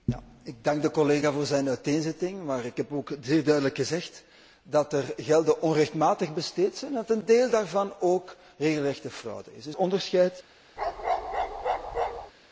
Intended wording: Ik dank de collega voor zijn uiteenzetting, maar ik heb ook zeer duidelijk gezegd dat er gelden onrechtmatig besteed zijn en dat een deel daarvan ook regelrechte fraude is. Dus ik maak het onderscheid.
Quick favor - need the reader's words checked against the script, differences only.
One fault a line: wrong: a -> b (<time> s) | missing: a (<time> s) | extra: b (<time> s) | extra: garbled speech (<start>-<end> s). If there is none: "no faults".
missing: ik maak het (9.8 s)